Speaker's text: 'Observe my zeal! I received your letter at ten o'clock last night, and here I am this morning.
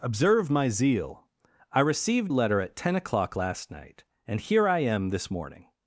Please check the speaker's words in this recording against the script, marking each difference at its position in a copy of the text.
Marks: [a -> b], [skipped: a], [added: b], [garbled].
'Observe my zeal! I received [skipped: your] letter at ten o'clock last night, and here I am this morning.